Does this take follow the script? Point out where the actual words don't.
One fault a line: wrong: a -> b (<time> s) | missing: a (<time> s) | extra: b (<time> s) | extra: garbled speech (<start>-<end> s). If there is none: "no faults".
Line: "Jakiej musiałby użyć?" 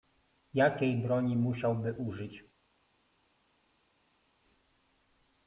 extra: broni (1.0 s)